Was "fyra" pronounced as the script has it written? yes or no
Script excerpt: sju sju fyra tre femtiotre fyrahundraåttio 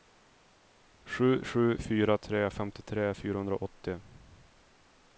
yes